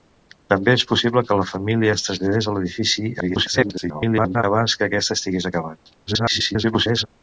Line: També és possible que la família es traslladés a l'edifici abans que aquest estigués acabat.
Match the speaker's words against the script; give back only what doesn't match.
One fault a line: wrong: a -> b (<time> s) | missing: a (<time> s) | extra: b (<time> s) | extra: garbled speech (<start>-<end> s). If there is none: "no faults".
extra: garbled speech (3.2-4.4 s)
extra: garbled speech (6.1-7.1 s)